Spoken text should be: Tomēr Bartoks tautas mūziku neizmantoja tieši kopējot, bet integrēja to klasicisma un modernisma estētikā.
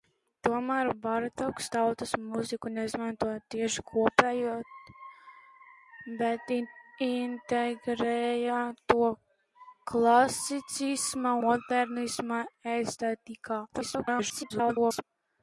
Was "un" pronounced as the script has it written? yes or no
no